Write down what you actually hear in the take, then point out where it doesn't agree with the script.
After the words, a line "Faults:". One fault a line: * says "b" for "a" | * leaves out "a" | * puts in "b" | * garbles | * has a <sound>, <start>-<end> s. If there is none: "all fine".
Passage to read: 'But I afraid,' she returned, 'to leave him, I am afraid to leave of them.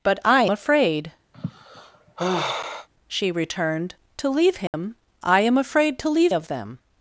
'But I afraid,' she returned, 'to leave him, I am afraid to leave of them.
Faults:
* has a sigh, 1.3-2.9 s
* has a dropout, 4.7-4.7 s